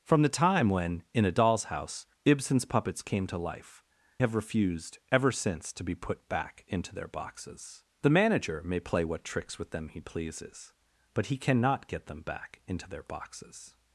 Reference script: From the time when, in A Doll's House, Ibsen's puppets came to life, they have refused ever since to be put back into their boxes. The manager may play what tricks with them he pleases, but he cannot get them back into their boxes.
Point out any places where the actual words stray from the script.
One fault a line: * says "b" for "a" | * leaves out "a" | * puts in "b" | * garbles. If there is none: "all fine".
* leaves out "they"